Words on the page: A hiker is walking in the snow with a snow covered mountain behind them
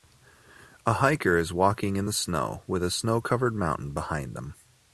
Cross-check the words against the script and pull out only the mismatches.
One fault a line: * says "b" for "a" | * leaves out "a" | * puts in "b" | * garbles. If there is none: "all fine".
all fine